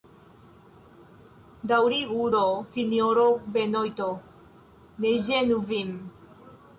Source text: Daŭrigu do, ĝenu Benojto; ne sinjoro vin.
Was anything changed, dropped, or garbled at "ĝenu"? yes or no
yes